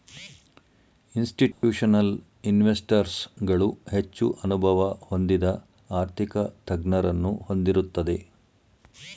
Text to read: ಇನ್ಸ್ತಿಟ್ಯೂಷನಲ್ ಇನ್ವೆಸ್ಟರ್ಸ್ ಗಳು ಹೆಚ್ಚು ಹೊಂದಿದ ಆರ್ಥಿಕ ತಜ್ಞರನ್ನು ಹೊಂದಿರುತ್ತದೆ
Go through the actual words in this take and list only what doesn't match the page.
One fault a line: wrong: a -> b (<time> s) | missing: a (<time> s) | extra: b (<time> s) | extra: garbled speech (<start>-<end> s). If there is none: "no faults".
extra: ಅನುಭವ (4.4 s)